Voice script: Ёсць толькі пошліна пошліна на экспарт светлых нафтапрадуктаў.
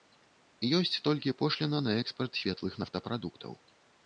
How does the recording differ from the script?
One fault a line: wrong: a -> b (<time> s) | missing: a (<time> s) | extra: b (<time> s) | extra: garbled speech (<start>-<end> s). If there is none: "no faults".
missing: пошліна (1.8 s)